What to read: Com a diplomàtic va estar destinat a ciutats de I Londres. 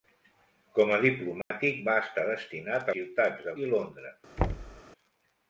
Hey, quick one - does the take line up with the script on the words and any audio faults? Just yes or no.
no